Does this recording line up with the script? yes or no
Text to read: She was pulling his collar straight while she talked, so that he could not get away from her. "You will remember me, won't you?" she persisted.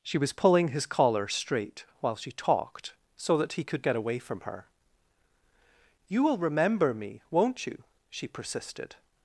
no